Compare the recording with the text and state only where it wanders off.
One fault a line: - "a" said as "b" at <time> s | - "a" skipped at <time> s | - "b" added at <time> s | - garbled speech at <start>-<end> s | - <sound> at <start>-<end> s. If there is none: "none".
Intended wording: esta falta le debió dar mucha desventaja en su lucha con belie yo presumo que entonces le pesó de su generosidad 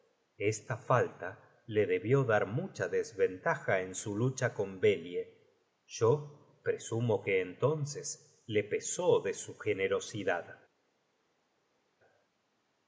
none